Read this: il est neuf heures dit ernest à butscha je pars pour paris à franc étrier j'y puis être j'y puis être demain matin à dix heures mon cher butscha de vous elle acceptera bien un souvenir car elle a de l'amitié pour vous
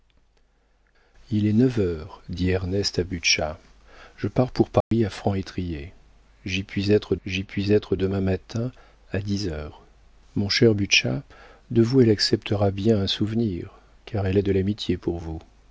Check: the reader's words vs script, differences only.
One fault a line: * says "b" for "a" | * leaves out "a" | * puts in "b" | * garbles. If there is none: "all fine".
all fine